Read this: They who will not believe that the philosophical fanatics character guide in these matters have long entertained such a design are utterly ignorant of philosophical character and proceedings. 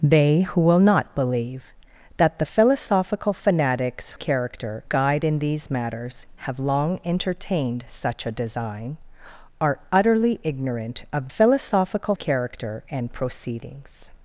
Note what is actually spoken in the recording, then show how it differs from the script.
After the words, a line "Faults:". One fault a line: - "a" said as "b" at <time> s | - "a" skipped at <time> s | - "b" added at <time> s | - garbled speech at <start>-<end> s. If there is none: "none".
They who will not believe that the philosophical fanatics character guide in these matters have long entertained such a design are utterly ignorant of philosophical character and proceedings.
Faults:
none